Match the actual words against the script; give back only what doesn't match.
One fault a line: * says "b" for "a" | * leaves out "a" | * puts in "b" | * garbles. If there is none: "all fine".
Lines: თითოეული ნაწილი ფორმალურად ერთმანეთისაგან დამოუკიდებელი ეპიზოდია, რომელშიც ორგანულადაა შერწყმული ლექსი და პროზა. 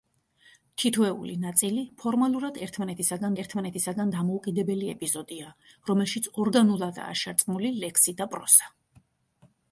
* puts in "ერთმანეთისაგან"